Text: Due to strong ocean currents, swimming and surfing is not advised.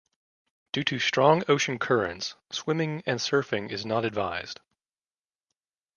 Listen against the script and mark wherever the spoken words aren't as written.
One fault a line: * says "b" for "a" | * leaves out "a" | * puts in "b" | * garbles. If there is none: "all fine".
all fine